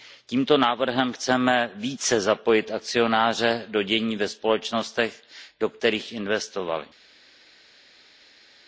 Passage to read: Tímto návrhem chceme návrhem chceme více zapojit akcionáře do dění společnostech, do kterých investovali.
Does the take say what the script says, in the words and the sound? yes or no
no